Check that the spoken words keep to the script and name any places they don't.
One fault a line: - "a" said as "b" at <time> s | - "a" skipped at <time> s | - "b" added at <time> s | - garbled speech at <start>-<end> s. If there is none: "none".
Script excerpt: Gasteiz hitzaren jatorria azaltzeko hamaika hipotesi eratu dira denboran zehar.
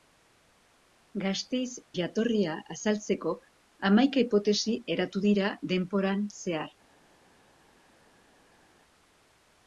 - "hitzaren" skipped at 1.7 s